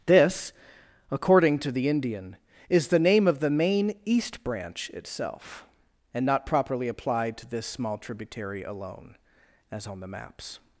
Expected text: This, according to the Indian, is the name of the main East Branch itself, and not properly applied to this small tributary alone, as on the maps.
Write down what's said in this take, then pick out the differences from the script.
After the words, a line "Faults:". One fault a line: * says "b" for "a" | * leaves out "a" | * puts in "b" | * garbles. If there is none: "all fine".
This, according to the Indian, is the name of the main East Branch itself, and not properly applied to this small tributary alone, as on the maps.
Faults:
all fine